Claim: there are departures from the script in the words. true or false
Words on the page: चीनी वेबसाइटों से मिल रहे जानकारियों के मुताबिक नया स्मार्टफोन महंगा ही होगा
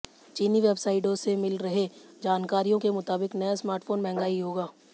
false